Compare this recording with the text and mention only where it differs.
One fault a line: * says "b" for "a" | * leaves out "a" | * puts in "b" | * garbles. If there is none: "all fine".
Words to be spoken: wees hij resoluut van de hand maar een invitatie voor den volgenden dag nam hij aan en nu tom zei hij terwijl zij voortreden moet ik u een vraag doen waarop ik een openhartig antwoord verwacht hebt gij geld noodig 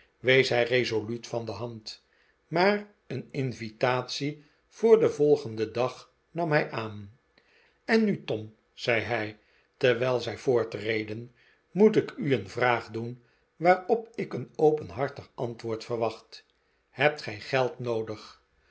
all fine